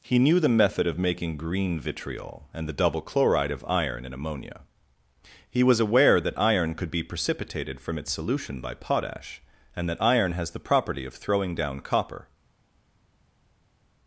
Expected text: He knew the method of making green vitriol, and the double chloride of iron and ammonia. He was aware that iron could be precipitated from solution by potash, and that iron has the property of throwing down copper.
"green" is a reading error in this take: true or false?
false